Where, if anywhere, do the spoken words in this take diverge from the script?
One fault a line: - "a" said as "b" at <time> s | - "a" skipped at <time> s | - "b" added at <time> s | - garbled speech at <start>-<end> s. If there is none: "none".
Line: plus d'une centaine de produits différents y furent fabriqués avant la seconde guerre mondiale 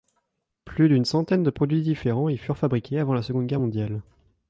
none